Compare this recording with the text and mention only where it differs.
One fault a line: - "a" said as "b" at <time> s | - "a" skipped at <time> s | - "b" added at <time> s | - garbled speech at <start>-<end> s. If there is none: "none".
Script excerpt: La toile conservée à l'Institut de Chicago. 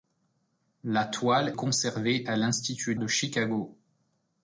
none